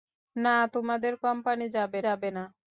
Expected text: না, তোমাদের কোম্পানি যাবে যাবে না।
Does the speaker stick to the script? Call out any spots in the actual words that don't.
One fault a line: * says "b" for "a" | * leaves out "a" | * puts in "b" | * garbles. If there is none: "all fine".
all fine